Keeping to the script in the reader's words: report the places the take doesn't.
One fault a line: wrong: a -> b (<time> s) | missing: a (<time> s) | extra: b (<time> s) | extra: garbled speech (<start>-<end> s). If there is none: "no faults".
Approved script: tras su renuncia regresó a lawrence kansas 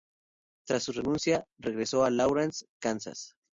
no faults